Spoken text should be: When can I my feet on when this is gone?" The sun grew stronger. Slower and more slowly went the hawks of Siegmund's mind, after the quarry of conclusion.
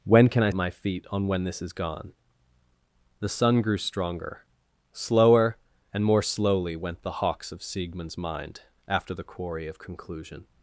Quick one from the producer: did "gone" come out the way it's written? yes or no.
yes